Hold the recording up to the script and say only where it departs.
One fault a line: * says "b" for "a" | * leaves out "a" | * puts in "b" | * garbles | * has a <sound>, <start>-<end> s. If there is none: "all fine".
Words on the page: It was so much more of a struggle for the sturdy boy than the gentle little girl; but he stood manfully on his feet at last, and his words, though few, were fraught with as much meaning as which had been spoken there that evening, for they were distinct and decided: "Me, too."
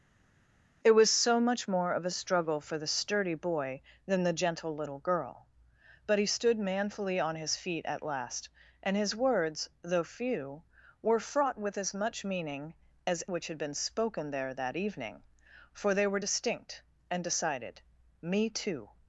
all fine